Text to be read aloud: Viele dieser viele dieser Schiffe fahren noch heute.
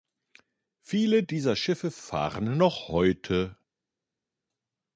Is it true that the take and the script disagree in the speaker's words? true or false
true